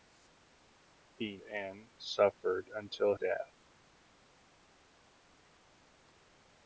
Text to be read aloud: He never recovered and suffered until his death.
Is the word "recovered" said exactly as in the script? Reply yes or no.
no